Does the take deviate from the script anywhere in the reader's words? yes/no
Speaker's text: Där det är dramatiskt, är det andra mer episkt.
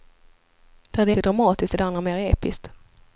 no